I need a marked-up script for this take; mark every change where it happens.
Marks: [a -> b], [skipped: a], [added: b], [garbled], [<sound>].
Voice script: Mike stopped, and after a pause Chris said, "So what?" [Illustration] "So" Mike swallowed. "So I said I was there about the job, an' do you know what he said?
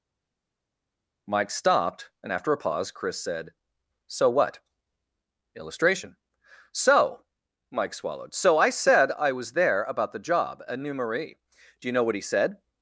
Mike stopped, and after a pause Chris said, "So what?" [Illustration] "So" Mike swallowed. "So I said I was there about the job, [an' -> a new marie] do you know what he said?